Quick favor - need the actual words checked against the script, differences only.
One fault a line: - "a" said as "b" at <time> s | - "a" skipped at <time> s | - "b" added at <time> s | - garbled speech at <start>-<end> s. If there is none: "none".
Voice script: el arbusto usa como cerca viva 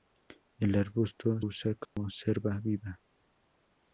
none